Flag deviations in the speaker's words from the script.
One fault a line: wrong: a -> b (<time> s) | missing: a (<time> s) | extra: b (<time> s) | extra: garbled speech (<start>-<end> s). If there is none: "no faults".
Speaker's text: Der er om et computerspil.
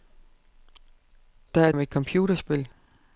no faults